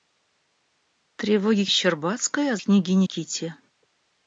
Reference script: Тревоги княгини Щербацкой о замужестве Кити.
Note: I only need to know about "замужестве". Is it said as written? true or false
false